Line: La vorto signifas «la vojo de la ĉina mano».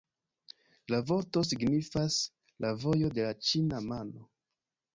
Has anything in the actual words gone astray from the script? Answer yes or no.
no